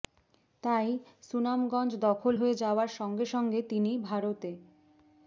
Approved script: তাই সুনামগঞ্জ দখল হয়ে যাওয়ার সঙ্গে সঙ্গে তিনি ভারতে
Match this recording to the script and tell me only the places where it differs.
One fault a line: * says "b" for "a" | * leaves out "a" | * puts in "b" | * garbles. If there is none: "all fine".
all fine